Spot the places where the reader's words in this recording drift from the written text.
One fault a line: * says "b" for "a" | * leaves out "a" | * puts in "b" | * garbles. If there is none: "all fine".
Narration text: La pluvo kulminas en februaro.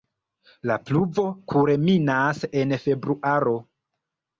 all fine